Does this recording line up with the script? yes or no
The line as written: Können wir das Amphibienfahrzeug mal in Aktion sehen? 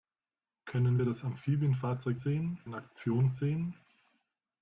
no